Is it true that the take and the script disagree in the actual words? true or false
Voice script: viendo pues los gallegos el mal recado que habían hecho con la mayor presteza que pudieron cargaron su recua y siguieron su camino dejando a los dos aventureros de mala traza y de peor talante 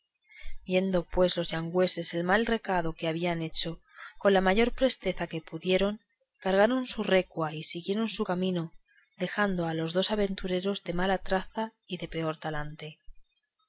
false